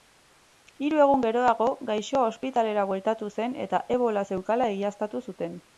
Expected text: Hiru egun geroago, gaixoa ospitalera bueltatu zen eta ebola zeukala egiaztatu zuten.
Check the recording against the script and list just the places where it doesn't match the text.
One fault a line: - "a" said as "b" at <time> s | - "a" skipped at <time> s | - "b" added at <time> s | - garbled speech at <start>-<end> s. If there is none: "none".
none